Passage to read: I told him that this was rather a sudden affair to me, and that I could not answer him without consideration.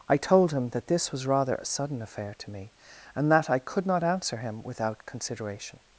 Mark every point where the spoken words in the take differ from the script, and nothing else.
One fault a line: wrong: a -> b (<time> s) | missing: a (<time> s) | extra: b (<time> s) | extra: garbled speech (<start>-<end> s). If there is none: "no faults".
no faults